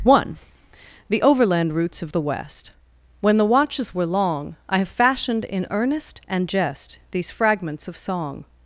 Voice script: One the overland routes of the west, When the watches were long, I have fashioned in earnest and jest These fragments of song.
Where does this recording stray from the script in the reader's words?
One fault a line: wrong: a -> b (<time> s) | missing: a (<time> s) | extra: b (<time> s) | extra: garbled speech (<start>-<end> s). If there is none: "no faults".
no faults